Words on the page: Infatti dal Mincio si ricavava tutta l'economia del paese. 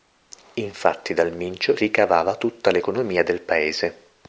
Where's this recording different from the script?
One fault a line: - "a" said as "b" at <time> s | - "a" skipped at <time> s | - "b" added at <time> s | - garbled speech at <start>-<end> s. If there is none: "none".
- "si" skipped at 1.8 s